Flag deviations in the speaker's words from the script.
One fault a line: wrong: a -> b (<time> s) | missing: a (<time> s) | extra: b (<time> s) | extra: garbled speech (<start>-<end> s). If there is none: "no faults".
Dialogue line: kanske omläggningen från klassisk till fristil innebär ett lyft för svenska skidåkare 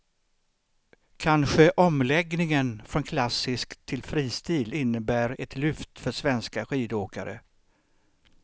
no faults